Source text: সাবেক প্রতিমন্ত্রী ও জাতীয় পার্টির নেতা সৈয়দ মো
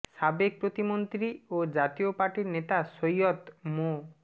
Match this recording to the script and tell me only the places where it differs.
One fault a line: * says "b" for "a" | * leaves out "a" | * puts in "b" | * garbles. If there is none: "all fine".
all fine